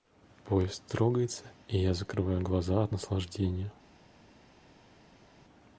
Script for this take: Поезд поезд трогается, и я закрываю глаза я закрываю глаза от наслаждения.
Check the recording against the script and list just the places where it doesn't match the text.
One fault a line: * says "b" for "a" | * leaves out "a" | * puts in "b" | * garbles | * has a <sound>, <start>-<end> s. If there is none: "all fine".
* leaves out "поезд"
* leaves out "я закрываю глаза"